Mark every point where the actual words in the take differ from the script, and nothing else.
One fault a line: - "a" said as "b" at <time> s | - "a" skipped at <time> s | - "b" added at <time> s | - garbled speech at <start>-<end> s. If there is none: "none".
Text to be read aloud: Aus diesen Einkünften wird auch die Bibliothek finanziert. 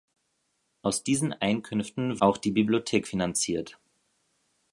- "wird" skipped at 2.2 s